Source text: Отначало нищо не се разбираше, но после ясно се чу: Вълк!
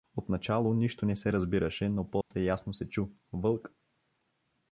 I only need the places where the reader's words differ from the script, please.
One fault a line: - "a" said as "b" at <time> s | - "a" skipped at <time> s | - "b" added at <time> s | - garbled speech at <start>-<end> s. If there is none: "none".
none